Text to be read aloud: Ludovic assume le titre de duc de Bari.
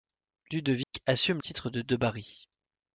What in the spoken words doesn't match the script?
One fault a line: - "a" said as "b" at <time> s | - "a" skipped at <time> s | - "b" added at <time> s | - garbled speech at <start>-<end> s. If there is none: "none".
- "le" skipped at 1.4 s
- "duc" skipped at 1.8 s